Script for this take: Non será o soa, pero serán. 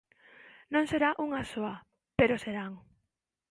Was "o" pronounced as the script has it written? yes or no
no